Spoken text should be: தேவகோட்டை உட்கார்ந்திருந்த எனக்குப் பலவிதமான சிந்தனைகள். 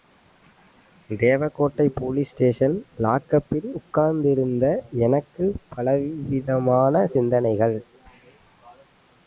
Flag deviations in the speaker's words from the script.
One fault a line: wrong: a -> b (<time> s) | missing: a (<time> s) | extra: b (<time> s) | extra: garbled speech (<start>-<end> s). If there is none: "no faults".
extra: போலீஸ் ஸ்டேஷன் லாக்கப்பில் (1.9 s)